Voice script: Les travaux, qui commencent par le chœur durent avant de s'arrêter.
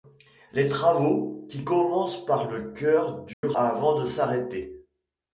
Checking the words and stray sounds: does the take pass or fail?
fail